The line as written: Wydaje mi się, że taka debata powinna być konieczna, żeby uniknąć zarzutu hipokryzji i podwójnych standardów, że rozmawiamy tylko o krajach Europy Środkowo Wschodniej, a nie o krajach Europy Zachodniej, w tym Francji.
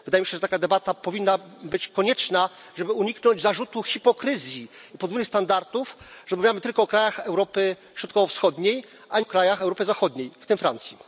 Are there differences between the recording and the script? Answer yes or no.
yes